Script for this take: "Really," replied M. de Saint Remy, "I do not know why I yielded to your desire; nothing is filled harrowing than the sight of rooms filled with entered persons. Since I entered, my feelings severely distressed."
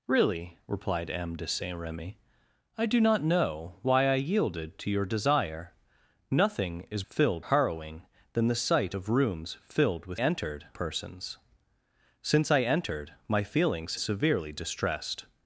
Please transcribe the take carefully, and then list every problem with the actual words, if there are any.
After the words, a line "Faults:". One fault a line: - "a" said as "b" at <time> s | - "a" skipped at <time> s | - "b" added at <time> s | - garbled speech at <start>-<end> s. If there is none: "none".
"Really," replied M. de Saint Remy, "I do not know why I yielded to your desire; nothing is filled harrowing than the sight of rooms filled with entered persons. Since I entered, my feelings severely distressed."
Faults:
none